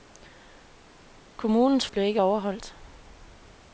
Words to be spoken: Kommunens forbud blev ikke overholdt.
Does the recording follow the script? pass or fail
fail